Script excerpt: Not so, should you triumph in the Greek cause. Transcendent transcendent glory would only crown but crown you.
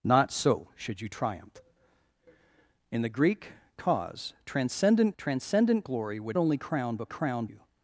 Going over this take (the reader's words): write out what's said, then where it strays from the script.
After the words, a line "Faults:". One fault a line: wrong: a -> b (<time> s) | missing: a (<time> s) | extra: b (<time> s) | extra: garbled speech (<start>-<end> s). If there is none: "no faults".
Not so, should you triumph in the Greek cause. Transcendent transcendent glory would only crown but crown you.
Faults:
no faults